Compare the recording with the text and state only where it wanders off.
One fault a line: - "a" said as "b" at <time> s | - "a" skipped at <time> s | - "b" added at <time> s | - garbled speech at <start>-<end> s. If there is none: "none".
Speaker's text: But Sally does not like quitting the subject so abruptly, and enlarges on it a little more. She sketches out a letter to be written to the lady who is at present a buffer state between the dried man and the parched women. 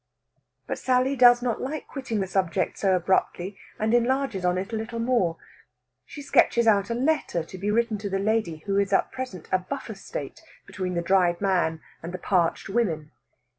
none